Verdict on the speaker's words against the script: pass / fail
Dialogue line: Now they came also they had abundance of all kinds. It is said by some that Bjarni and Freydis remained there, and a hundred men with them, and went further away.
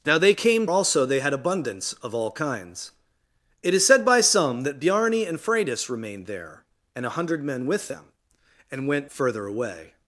pass